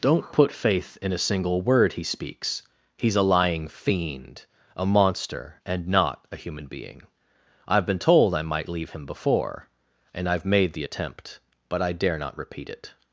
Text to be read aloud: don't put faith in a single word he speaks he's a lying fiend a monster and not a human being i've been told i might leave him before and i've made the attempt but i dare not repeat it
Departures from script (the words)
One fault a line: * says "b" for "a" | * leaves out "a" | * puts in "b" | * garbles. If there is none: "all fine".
all fine